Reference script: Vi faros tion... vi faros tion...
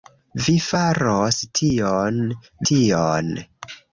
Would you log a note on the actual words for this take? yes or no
yes